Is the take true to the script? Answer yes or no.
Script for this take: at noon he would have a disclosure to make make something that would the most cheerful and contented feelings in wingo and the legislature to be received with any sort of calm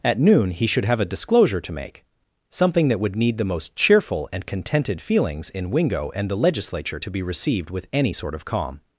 no